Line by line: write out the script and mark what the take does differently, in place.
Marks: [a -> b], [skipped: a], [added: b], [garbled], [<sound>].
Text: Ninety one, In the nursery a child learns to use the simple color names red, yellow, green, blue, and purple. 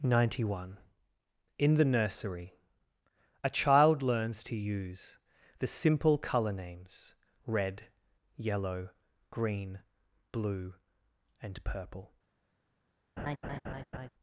Ninety one, In the nursery a child learns to use the simple color names red, yellow, green, blue, and purple. [laugh]